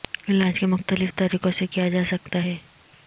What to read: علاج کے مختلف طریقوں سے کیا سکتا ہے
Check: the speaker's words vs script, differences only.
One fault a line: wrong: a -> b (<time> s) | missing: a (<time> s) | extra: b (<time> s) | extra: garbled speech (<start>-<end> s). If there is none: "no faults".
extra: جا (1.9 s)